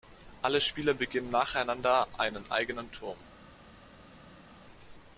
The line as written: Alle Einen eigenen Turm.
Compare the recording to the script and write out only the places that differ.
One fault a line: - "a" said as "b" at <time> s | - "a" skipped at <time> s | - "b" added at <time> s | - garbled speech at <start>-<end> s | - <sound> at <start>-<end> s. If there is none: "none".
- "Spieler beginnen nacheinander" added at 0.6 s